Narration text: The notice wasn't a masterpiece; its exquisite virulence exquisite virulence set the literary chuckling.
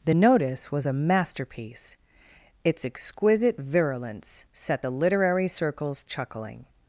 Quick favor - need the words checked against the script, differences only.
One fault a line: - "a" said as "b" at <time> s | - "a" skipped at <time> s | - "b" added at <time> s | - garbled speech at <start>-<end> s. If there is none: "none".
- "wasn't" said as "was" at 0.7 s
- "exquisite virulence" skipped at 4.5 s
- "circles" added at 5.5 s